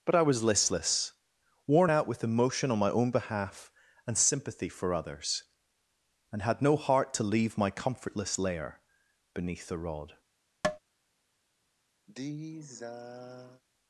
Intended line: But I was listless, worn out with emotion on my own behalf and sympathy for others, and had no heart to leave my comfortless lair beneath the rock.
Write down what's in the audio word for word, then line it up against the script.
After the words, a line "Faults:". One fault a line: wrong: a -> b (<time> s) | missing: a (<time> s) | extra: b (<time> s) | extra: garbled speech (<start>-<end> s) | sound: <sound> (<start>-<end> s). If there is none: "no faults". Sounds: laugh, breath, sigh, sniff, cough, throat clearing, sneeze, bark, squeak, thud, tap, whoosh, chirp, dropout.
But I was listless, worn out with emotion on my own behalf and sympathy for others, and had no heart to leave my comfortless lair beneath the rod.
Faults:
wrong: rock -> rod (9.8 s)
sound: tap (10.6-10.8 s)
sound: sigh (12.1-13.6 s)